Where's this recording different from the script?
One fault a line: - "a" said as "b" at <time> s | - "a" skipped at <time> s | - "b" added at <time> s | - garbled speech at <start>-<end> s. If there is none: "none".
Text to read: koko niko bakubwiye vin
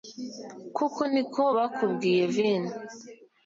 none